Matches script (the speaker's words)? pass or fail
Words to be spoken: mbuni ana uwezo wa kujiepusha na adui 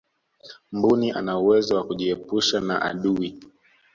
pass